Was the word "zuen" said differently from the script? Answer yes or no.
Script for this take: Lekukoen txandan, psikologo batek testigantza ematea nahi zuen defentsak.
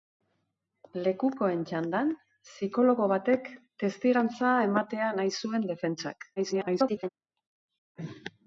no